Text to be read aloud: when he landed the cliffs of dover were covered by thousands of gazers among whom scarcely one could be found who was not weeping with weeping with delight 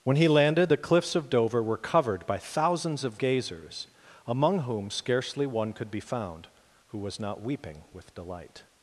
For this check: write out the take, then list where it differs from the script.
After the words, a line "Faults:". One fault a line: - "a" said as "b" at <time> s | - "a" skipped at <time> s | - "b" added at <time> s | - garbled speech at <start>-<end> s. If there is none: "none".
when he landed the cliffs of dover were covered by thousands of gazers among whom scarcely one could be found who was not weeping with delight
Faults:
- "weeping with" skipped at 8.1 s